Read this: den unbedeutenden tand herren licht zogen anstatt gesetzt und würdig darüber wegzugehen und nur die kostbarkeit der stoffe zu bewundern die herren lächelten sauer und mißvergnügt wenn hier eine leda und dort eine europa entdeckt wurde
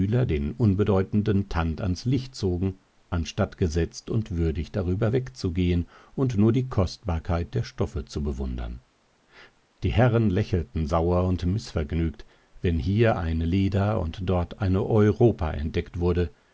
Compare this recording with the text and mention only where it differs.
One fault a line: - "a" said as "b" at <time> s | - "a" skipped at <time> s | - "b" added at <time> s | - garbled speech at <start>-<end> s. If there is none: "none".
- "herren" said as "ans" at 1.8 s